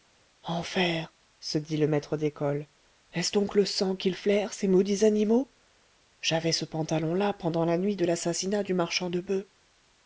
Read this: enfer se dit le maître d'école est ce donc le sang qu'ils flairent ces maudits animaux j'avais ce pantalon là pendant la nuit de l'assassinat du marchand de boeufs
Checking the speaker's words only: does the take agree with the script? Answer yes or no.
yes